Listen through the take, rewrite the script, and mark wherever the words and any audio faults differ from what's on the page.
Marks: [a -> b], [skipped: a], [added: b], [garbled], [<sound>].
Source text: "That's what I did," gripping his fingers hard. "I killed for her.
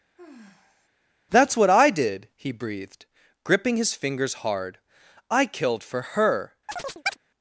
[sigh] "That's what I did," [added: he breathed] gripping his fingers hard. "I killed for her. [chirp]